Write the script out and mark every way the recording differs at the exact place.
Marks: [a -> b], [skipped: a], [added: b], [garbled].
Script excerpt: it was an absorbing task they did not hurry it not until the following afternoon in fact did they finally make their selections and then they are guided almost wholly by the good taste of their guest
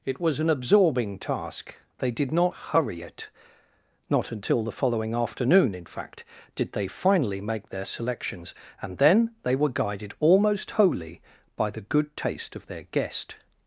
it was an absorbing task they did not hurry it not until the following afternoon in fact did they finally make their selections and then they [are -> were] guided almost wholly by the good taste of their guest